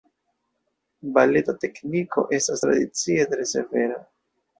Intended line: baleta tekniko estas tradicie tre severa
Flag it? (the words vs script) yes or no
no